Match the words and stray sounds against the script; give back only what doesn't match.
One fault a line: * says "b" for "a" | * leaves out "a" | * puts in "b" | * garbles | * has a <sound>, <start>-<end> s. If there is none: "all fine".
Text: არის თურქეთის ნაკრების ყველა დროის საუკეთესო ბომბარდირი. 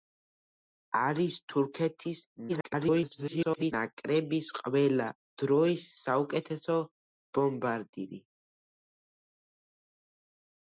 * garbles